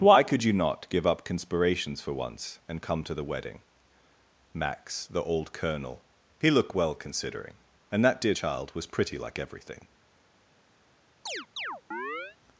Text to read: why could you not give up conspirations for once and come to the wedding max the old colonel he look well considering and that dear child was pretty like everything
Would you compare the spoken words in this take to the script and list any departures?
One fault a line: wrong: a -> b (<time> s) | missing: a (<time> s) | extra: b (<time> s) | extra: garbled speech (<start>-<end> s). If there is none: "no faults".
wrong: look -> looked (6.5 s)